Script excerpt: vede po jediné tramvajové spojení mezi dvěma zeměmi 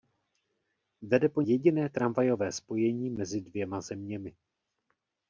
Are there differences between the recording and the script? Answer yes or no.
no